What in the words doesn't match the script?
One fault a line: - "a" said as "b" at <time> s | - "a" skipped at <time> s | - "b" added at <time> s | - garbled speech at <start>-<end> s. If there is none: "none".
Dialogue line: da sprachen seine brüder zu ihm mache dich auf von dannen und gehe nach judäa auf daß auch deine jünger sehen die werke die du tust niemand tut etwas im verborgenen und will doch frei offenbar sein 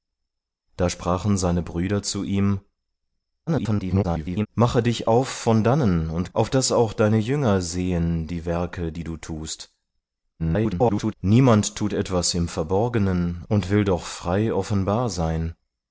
- garbled speech at 3.5-4.5 s
- "gehe nach judäa" skipped at 6.3 s
- garbled speech at 10.4-11.1 s